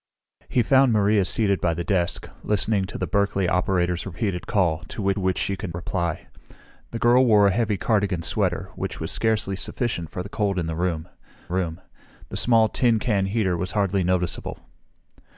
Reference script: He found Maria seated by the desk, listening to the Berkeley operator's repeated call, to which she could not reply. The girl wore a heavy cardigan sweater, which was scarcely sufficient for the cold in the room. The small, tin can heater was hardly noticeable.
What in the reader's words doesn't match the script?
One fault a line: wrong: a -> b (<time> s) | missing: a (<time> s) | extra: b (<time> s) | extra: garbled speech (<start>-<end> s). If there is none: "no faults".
extra: which (5.2 s)
missing: not (5.7 s)
extra: room (11.5 s)